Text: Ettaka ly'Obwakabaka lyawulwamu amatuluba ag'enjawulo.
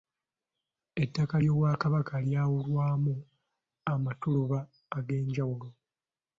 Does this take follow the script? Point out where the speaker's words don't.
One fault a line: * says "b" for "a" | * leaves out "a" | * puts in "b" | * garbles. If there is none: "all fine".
all fine